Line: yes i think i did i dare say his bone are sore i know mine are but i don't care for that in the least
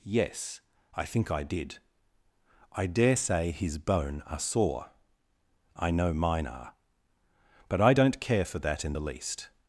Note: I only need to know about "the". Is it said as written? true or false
true